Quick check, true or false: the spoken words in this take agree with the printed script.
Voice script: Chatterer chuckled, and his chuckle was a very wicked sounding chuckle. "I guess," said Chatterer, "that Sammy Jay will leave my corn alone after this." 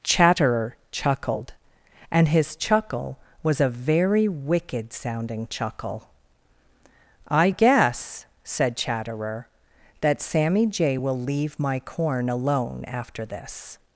true